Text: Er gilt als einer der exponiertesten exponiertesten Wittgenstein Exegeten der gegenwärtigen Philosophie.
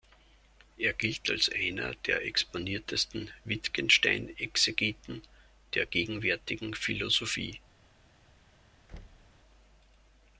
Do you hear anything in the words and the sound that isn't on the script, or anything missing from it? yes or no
yes